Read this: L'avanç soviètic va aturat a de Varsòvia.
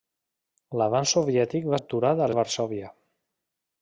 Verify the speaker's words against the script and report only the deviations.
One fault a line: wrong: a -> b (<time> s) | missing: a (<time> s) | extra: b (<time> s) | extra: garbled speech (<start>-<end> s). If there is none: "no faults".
no faults